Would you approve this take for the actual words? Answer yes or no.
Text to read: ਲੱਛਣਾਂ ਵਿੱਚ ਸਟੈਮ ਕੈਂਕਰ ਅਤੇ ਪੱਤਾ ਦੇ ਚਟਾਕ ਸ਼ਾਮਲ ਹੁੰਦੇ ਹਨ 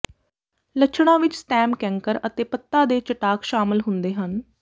yes